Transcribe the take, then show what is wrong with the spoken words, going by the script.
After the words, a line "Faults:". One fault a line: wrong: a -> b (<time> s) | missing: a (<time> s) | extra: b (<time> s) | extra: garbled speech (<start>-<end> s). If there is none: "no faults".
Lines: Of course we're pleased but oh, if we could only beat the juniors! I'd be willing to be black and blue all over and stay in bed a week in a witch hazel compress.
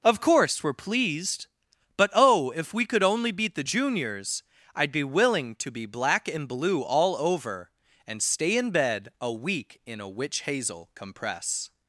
Of course we're pleased but oh, if we could only beat the juniors! I'd be willing to be black and blue all over and stay in bed a week in a witch hazel compress.
Faults:
no faults